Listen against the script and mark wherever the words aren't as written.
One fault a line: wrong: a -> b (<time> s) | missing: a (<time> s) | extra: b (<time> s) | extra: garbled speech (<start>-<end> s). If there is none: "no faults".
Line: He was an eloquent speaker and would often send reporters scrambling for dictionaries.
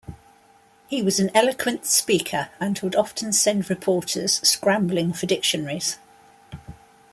no faults